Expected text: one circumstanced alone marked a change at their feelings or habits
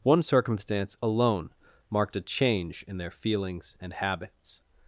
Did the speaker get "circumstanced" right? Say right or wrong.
wrong